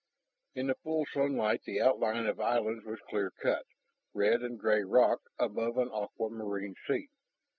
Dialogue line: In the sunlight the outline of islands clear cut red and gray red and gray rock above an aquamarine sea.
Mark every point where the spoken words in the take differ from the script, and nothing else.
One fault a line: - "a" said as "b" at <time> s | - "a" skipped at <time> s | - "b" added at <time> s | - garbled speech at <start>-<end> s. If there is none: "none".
- "full" added at 0.8 s
- "was" added at 2.9 s
- "red and gray" skipped at 4.8 s